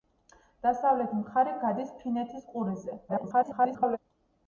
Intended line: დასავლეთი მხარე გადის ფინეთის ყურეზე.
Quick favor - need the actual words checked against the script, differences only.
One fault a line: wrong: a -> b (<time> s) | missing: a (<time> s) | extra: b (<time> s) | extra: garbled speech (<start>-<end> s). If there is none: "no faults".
extra: garbled speech (3.1-4.0 s)